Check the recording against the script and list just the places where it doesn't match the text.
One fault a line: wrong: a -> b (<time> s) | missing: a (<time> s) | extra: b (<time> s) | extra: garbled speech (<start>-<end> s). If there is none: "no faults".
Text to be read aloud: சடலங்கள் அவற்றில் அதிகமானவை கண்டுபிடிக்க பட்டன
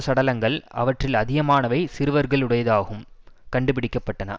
extra: சிறுவர்களுடையதாகும் (2.0 s)